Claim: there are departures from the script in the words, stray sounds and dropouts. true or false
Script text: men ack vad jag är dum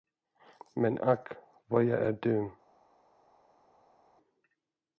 false